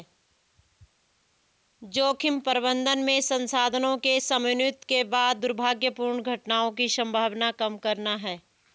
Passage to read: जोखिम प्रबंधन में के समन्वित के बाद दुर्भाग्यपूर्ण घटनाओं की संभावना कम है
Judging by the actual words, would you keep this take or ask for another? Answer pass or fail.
fail